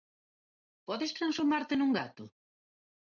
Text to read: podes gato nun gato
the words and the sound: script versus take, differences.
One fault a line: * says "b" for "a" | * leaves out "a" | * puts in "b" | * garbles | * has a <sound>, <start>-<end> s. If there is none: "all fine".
* says "transformarte" for "gato"